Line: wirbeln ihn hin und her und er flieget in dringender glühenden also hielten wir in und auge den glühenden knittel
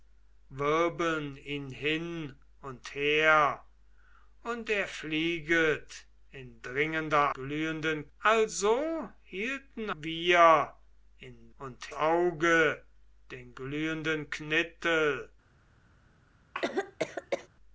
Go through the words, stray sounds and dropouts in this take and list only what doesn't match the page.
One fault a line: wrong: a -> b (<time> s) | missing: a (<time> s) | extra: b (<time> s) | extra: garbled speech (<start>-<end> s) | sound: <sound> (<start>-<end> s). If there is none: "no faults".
sound: cough (16.5-17.5 s)